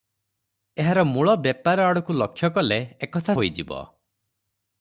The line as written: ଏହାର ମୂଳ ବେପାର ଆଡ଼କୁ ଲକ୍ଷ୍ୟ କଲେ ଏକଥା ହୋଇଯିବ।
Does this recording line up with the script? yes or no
yes